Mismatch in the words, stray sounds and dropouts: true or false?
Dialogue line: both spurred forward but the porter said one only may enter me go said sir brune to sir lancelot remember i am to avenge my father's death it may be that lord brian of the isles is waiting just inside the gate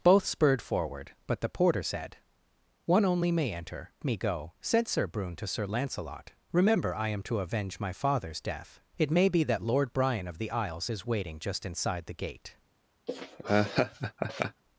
true